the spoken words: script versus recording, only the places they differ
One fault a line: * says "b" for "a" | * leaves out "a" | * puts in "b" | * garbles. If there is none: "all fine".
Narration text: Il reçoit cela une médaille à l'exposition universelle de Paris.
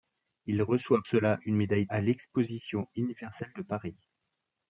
all fine